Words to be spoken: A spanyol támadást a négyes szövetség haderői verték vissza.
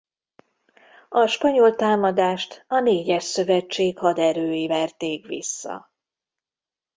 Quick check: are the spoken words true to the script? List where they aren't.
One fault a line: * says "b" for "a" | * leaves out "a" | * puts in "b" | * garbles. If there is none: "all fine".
all fine